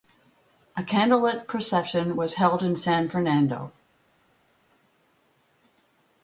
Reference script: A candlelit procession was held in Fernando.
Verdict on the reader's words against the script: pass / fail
fail